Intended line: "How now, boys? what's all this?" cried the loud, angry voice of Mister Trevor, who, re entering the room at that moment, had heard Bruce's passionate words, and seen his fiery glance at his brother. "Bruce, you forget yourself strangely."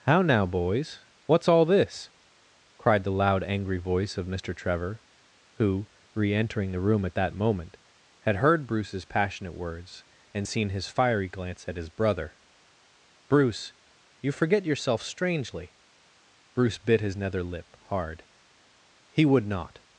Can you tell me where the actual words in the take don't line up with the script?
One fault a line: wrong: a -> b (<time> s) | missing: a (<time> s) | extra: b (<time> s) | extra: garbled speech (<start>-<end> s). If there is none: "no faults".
extra: Bruce bit his nether lip hard He would not (16.5 s)